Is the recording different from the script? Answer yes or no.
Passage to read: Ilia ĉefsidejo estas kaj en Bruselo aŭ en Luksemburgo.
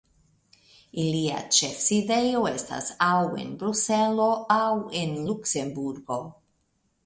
yes